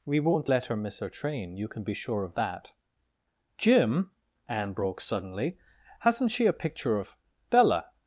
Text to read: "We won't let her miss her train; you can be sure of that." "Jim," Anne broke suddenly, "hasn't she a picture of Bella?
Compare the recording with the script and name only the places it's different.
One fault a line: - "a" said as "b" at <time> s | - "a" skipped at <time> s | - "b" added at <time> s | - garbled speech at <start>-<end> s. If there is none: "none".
none